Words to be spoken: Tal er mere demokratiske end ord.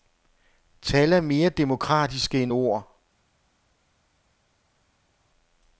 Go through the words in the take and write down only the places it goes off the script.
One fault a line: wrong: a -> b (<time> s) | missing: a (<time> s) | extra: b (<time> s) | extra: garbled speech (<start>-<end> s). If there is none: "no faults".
no faults